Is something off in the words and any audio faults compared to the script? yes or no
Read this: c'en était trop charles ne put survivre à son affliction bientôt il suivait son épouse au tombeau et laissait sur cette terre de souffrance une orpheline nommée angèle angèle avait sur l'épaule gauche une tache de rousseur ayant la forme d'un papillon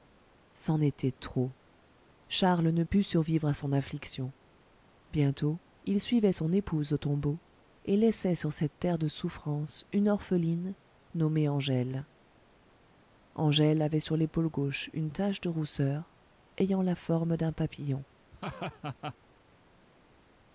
yes